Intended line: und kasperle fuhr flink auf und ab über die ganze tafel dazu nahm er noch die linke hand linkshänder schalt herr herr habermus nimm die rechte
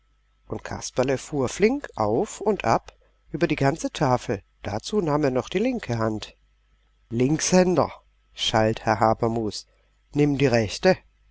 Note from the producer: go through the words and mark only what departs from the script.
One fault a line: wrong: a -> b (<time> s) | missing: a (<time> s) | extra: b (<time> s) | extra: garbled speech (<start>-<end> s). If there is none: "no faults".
missing: herr (9.0 s)